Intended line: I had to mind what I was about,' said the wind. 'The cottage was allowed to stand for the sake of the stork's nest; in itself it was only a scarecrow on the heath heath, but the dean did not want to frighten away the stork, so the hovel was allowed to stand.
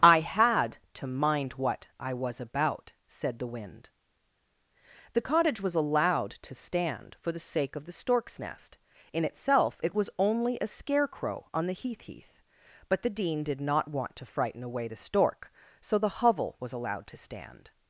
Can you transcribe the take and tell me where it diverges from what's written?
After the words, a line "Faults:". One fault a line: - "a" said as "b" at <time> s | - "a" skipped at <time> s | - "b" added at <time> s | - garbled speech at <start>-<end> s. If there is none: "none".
I had to mind what I was about,' said the wind. 'The cottage was allowed to stand for the sake of the stork's nest; in itself it was only a scarecrow on the heath heath, but the dean did not want to frighten away the stork, so the hovel was allowed to stand.
Faults:
none